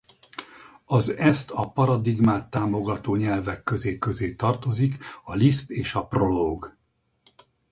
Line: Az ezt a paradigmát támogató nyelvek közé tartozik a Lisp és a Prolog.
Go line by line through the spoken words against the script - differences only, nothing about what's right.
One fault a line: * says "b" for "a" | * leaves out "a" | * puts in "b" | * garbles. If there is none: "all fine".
* puts in "közé"